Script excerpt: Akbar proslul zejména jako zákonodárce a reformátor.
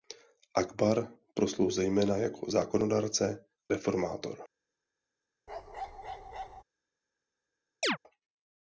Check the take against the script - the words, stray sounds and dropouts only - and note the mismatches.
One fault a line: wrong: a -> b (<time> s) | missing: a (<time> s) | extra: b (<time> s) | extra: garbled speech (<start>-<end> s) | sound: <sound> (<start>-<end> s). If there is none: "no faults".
missing: a (3.5 s)
sound: bark (5.5-6.6 s)
sound: chirp (7.8-8.0 s)